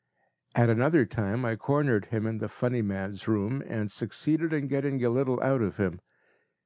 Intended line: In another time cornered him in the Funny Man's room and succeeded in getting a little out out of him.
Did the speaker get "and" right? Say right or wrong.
right